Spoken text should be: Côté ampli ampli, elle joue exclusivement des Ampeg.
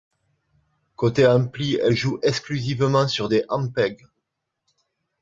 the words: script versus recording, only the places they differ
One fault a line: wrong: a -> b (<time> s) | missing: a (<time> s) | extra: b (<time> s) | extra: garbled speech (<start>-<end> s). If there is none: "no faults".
missing: ampli (1.8 s)
extra: sur (3.1 s)